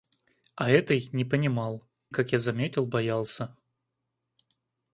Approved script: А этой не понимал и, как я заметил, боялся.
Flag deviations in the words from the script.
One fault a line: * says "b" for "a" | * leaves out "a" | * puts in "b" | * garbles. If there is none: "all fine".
* leaves out "и"